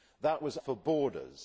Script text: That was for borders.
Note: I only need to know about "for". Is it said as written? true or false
true